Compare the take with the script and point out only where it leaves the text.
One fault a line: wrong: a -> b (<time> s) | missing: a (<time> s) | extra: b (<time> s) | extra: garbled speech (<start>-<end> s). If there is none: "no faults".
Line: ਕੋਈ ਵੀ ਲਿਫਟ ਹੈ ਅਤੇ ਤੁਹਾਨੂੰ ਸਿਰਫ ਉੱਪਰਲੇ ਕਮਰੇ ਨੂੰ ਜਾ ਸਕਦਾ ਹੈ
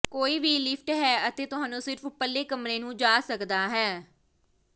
no faults